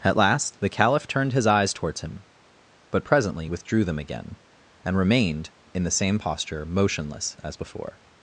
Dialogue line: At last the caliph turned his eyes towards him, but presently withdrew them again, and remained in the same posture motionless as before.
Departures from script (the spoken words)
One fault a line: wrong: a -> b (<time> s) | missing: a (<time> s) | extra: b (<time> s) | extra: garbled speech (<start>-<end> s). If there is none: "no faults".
no faults